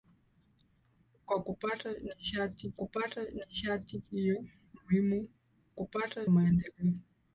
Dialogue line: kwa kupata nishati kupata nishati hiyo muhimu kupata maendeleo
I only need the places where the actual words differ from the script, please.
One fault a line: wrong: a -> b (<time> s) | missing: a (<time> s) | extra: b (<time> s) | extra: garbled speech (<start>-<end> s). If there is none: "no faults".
no faults